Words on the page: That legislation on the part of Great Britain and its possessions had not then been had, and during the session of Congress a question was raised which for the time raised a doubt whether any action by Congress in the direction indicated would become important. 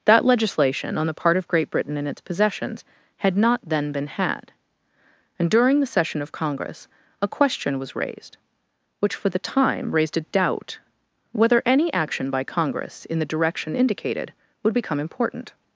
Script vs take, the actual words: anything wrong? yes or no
no